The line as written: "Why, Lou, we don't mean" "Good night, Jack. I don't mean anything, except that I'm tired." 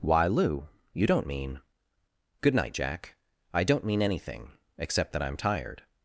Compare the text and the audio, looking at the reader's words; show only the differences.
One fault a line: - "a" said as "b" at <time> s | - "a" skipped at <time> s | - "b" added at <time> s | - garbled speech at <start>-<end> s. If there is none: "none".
- "we" said as "you" at 0.9 s